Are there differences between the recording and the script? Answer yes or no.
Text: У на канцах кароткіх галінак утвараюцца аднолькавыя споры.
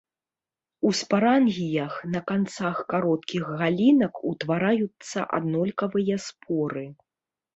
yes